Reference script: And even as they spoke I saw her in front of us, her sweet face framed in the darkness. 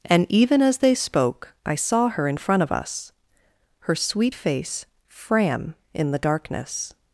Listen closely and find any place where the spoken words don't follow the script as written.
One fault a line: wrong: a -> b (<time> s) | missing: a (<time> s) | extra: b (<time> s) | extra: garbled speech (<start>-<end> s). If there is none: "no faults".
wrong: framed -> fram (5.1 s)